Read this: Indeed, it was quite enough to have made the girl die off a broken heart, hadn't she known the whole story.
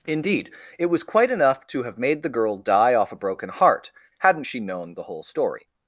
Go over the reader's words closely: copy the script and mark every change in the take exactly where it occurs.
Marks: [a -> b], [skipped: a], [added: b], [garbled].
Indeed, it was quite enough to have made the girl die off a broken heart, hadn't she known the whole story.